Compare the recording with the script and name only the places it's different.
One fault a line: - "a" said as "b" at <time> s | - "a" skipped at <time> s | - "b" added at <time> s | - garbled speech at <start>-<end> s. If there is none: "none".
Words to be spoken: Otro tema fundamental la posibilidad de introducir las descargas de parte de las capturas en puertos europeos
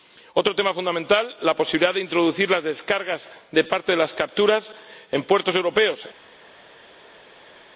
none